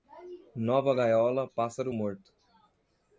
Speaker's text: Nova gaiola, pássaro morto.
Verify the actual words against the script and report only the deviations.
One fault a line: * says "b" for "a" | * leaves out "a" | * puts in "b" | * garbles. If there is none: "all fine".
all fine